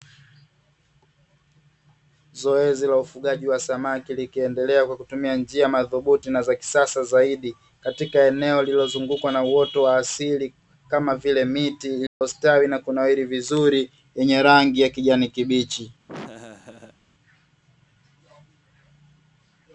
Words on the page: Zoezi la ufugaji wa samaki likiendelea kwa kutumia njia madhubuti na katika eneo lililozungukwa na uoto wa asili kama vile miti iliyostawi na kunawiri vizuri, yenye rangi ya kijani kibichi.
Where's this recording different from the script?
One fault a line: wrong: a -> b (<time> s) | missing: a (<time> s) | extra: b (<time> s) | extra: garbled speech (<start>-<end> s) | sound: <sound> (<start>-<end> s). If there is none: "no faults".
extra: za kisasa zaidi (6.4 s)
sound: dropout (12.1-12.2 s)
sound: laugh (16.1-17.0 s)